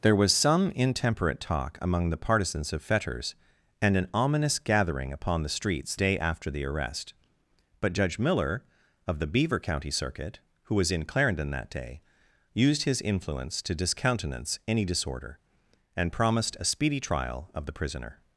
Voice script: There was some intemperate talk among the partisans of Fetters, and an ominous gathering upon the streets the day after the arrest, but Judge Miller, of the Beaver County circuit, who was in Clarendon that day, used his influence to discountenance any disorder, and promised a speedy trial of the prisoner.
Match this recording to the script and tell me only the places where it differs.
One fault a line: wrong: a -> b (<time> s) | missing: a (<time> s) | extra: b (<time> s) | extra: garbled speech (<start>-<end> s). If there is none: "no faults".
missing: the (6.0 s)